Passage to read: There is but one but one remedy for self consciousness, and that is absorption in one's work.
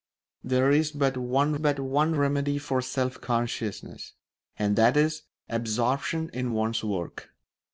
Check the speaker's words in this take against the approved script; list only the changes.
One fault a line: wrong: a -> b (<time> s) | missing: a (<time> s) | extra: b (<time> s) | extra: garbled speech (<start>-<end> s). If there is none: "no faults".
no faults